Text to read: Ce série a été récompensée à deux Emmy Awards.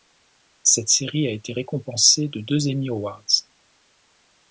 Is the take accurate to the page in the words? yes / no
no